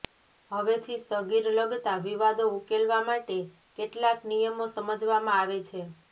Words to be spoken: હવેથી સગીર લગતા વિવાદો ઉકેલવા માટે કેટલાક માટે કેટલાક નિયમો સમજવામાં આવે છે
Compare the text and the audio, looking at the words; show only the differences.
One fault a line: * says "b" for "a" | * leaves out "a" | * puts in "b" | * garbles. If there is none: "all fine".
* leaves out "માટે કેટલાક"